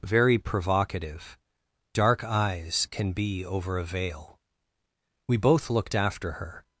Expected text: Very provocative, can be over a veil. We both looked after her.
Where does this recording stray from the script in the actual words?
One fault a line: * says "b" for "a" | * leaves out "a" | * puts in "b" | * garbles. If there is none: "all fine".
* puts in "dark eyes"